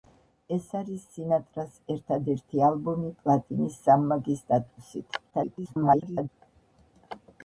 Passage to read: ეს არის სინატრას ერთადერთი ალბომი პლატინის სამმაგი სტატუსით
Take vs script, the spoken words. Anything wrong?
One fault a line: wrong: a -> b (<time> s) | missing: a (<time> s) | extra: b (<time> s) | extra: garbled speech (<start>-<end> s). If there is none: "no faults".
extra: garbled speech (5.3-6.3 s)